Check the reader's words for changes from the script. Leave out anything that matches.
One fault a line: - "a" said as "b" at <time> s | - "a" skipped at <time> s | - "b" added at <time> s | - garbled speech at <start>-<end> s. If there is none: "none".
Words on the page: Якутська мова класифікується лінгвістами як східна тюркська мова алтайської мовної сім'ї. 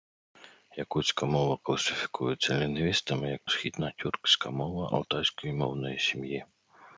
none